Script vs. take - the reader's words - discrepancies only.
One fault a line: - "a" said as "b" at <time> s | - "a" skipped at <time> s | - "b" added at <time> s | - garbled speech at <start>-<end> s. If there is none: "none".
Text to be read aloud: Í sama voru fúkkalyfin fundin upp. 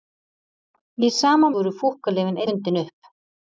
none